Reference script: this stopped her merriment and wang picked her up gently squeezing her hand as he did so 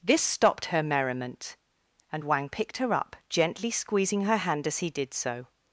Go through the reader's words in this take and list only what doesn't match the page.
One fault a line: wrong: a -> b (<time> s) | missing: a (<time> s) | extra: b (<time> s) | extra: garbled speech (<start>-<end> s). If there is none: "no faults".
no faults